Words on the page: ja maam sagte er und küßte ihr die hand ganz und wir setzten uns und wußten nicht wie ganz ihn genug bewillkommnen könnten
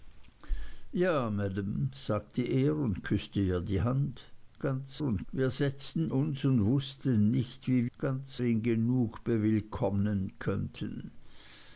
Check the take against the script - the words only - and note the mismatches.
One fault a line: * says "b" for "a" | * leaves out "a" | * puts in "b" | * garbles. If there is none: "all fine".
all fine